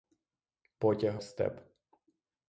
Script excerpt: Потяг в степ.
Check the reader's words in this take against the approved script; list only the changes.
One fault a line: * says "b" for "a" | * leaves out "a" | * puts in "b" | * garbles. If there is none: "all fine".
all fine